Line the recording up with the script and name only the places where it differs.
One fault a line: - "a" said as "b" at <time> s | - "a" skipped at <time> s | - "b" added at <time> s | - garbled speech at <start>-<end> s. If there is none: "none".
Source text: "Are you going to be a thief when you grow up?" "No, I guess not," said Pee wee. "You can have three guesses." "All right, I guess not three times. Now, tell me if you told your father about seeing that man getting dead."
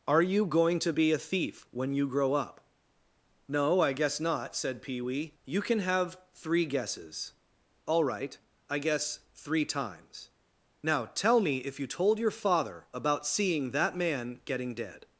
- "not" skipped at 9.2 s